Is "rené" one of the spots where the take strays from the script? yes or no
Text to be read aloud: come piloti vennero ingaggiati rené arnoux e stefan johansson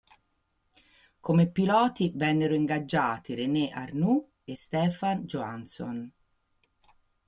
no